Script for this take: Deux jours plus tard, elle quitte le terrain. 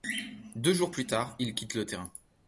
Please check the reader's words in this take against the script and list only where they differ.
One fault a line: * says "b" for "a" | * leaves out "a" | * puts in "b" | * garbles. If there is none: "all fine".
* says "il" for "elle"